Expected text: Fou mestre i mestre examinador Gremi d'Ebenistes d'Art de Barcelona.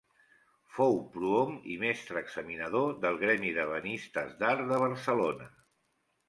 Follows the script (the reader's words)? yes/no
no